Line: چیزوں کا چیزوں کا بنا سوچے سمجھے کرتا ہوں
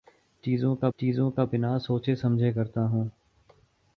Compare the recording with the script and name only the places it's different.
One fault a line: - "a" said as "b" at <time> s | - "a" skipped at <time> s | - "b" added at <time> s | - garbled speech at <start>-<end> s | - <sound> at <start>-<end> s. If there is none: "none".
none